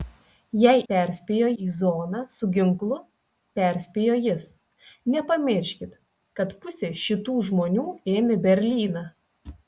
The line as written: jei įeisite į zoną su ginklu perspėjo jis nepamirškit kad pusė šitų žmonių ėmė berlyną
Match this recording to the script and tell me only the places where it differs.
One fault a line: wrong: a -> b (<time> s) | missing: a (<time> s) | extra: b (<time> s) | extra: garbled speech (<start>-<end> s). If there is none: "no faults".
wrong: įeisite -> perspėjo (0.9 s)